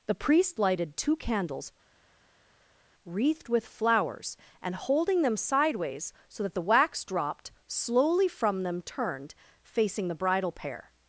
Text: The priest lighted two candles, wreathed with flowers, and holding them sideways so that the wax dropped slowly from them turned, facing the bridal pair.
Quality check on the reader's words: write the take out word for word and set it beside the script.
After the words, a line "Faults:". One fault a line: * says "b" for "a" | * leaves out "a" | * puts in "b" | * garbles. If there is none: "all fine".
The priest lighted two candles, wreathed with flowers, and holding them sideways so that the wax dropped slowly from them turned, facing the bridal pair.
Faults:
all fine